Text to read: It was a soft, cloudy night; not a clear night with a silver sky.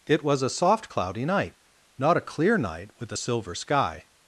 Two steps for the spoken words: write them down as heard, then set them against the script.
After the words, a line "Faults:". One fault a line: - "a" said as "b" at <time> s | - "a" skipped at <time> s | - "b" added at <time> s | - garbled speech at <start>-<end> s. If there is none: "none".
It was a soft, cloudy night; not a clear night with a silver sky.
Faults:
none